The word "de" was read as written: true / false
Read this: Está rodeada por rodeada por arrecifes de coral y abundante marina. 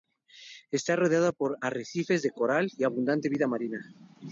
true